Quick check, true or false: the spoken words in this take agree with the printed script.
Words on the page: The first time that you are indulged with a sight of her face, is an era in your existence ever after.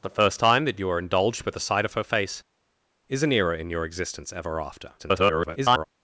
false